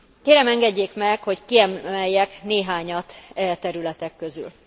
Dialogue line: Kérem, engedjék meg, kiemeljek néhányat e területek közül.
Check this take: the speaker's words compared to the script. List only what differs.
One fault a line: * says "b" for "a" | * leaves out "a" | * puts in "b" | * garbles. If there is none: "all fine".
* puts in "hogy"